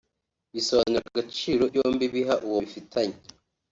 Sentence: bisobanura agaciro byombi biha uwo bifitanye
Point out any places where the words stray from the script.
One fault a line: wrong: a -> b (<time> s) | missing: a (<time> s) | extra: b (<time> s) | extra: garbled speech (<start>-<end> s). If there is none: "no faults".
no faults